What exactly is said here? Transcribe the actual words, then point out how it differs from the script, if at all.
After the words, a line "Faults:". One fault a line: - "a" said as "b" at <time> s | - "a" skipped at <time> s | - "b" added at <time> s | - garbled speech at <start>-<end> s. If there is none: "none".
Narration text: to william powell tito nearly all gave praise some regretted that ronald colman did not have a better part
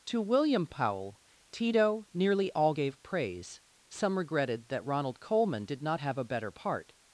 to william powell tito nearly all gave praise some regretted that ronald colman did not have a better part
Faults:
none